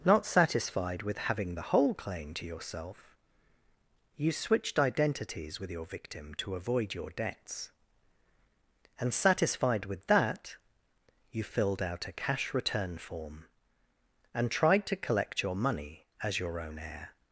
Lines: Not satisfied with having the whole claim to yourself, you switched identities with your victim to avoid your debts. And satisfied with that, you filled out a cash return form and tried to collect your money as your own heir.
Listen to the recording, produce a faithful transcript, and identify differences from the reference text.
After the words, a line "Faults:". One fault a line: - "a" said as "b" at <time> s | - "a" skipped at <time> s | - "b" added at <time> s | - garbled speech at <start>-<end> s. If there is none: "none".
Not satisfied with having the whole claim to yourself, you switched identities with your victim to avoid your debts. And satisfied with that, you filled out a cash return form and tried to collect your money as your own heir.
Faults:
none